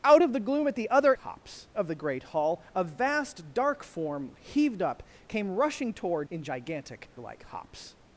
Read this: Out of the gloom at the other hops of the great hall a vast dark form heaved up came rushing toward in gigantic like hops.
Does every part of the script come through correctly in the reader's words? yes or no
yes